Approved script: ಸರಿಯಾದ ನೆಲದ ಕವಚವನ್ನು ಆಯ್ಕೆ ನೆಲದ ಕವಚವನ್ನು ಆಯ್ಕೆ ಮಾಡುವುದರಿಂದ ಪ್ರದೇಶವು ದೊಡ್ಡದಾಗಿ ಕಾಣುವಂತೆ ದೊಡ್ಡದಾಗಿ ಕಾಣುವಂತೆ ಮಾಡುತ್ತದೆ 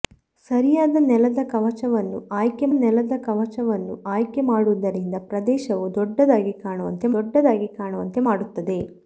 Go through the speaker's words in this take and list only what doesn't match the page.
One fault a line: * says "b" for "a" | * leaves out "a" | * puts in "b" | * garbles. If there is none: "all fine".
all fine